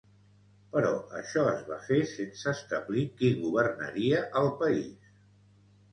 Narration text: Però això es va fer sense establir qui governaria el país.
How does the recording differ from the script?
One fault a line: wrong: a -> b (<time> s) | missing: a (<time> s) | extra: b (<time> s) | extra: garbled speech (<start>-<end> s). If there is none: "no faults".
no faults